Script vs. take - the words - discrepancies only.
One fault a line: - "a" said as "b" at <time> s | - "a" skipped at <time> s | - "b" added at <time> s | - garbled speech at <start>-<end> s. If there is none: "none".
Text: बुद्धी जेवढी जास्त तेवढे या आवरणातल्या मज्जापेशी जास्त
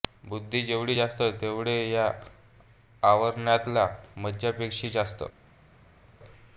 none